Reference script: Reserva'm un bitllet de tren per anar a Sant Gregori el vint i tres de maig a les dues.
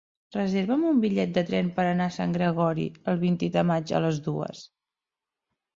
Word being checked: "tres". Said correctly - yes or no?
no